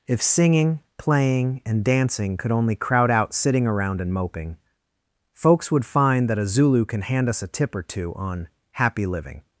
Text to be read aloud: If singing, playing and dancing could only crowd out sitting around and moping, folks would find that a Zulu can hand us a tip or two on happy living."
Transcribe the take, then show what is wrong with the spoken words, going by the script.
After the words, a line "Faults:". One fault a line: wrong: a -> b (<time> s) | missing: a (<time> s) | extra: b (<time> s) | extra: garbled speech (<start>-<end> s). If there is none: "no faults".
If singing, playing and dancing could only crowd out sitting around and moping, folks would find that a Zulu can hand us a tip or two on happy living."
Faults:
no faults